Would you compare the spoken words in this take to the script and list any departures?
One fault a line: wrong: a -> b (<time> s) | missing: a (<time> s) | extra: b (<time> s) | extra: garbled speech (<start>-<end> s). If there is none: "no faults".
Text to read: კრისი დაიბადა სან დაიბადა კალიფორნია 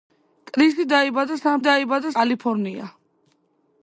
no faults